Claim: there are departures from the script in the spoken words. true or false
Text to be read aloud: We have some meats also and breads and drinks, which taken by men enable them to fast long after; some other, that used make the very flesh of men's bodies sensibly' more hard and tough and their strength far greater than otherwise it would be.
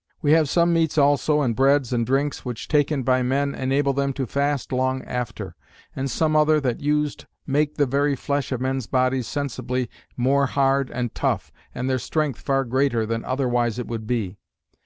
true